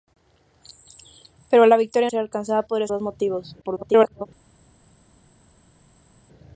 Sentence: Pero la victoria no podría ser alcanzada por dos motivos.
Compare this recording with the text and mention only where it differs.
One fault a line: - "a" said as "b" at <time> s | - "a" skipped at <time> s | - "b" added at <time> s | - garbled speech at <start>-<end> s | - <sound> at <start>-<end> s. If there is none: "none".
- "no podría" skipped at 2.1 s
- "por" said as "podría" at 2.6 s
- garbled speech at 3.6-4.3 s